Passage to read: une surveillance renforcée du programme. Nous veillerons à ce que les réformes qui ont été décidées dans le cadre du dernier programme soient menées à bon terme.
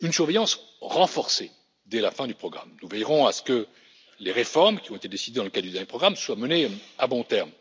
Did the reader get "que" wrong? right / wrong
right